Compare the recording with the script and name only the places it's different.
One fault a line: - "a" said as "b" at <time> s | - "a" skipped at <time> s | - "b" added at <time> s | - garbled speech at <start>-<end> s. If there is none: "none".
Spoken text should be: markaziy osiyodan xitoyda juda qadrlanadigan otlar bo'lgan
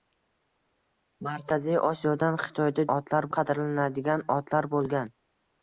- "juda" said as "otlar" at 3.0 s